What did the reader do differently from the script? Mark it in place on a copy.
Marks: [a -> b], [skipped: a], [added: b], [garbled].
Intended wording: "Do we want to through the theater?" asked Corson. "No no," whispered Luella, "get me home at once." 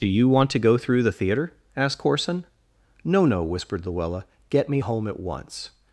"Do [we -> you] want to [added: go] through the theater?" asked Corson. "No no," whispered Luella, "get me home at once."